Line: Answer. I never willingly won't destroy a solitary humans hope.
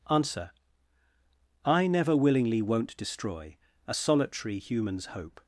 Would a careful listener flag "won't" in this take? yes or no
no